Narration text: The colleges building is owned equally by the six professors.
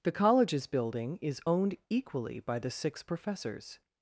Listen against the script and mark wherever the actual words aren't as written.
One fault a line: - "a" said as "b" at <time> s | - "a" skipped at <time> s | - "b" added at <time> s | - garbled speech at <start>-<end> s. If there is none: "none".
none